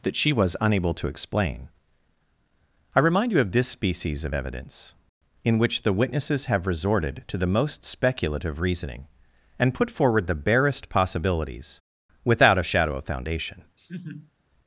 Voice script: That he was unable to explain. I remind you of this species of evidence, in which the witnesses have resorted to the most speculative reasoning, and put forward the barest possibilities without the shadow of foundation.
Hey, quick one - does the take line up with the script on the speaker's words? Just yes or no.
no